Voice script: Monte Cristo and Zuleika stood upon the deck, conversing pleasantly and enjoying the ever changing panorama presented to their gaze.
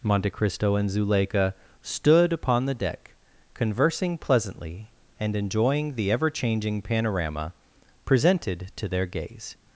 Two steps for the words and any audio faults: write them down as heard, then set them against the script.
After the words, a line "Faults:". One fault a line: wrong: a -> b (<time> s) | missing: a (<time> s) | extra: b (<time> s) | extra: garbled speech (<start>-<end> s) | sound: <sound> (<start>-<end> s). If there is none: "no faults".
Monte Cristo and Zuleika stood upon the deck, conversing pleasantly and enjoying the ever changing panorama presented to their gaze.
Faults:
no faults